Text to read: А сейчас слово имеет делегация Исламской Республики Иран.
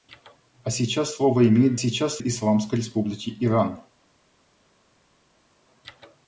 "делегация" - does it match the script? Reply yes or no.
no